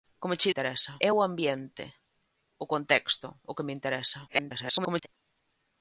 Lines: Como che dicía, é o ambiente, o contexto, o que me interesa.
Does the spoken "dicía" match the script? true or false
false